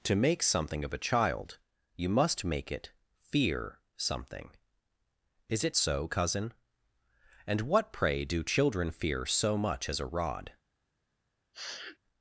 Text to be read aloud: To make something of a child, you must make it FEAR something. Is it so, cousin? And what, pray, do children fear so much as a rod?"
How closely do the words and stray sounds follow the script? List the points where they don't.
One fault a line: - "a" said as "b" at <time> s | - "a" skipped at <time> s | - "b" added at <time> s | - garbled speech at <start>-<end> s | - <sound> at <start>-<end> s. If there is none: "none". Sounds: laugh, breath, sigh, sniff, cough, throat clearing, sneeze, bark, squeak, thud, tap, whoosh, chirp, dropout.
- sniff at 11.5-12.0 s